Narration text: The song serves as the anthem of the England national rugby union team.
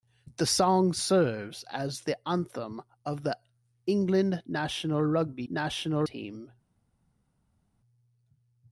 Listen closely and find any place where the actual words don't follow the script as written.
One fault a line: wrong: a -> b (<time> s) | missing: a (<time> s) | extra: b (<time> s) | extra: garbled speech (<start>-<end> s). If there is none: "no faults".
wrong: union -> national (5.5 s)